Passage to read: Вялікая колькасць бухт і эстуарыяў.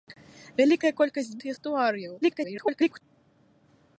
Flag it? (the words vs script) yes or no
yes